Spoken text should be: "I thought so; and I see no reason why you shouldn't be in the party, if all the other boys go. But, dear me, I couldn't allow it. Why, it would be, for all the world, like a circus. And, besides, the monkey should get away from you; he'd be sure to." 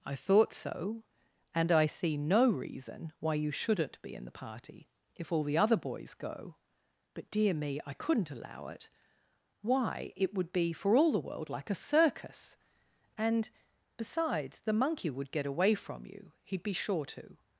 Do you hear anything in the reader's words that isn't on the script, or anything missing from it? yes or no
yes